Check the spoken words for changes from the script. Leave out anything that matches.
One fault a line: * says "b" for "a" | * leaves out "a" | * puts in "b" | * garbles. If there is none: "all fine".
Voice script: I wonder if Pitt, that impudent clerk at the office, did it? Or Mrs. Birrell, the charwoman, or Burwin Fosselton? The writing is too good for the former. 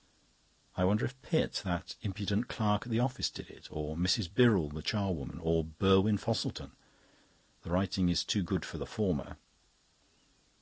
all fine